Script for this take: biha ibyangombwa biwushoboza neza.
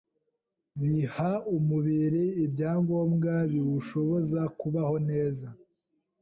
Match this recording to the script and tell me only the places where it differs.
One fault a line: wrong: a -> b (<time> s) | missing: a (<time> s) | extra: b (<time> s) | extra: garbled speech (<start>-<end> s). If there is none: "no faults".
extra: umubiri (1.6 s)
extra: kubaho (4.6 s)